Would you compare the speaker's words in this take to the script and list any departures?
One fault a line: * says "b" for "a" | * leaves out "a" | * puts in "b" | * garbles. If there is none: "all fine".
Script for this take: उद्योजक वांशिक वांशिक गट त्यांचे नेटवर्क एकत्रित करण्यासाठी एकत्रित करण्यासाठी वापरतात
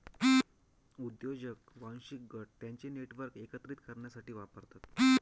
* leaves out "वांशिक"
* leaves out "एकत्रित करण्यासाठी"